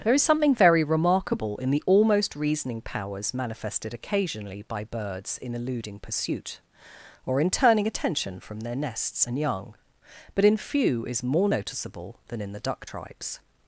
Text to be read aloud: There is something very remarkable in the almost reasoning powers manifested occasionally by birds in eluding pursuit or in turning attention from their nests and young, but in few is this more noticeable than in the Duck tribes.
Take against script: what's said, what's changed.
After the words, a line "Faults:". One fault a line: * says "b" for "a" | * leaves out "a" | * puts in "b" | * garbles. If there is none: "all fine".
There is something very remarkable in the almost reasoning powers manifested occasionally by birds in eluding pursuit or in turning attention from their nests and young, but in few is more noticeable than in the Duck tribes.
Faults:
* leaves out "this"